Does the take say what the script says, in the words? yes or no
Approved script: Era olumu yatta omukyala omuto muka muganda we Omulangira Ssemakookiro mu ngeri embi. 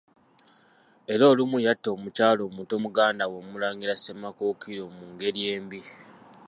no